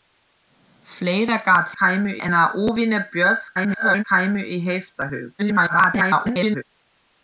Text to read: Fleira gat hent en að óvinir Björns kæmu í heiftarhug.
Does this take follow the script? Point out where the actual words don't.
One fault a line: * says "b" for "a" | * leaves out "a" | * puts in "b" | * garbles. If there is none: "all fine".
* says "kæmu" for "hent"
* garbles
* garbles